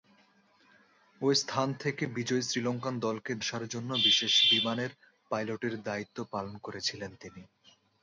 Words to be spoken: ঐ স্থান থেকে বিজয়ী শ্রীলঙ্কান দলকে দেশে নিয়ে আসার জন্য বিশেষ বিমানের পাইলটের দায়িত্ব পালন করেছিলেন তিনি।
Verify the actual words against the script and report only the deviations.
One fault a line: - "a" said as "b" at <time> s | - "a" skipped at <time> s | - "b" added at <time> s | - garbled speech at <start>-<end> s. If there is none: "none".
- "দেশে নিয়ে" skipped at 3.3 s